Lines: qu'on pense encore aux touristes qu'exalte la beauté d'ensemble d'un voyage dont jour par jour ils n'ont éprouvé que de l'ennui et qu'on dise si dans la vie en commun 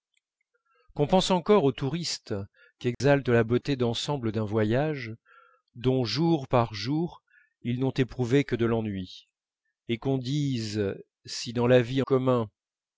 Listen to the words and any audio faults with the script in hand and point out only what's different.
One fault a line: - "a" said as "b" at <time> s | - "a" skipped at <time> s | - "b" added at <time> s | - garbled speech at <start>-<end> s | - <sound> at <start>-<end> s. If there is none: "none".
- dropout at 2.9-3.0 s
- "en" skipped at 12.0 s